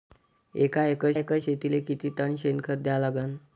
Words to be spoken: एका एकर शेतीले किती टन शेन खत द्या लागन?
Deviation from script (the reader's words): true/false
true